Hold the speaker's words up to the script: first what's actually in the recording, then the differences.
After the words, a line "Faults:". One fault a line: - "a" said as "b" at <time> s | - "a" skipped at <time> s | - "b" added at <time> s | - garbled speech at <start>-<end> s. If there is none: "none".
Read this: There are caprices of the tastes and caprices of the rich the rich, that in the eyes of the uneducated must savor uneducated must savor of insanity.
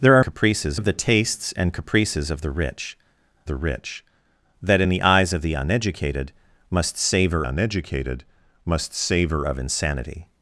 There are caprices of the tastes and caprices of the rich the rich, that in the eyes of the uneducated must savor uneducated must savor of insanity.
Faults:
none